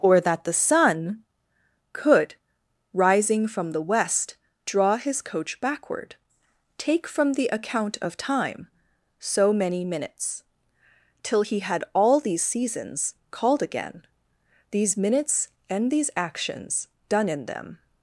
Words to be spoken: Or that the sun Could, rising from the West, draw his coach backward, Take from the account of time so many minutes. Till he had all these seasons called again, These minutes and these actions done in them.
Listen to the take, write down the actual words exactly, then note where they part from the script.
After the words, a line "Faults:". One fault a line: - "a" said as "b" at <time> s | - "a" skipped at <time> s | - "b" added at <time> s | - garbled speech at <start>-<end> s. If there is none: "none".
Or that the sun Could, rising from the West, draw his coach backward, Take from the account of time so many minutes. Till he had all these seasons called again, These minutes and these actions done in them.
Faults:
none